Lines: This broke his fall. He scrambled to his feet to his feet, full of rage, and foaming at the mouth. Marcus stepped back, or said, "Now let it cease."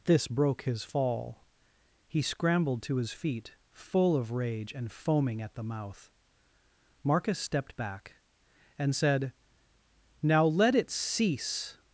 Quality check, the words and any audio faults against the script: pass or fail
fail